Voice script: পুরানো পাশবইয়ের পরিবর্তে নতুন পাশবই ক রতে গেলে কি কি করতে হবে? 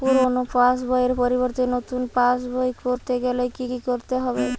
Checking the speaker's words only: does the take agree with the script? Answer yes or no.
yes